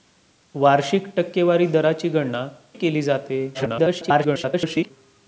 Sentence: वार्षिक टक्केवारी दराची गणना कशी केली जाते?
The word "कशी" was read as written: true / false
false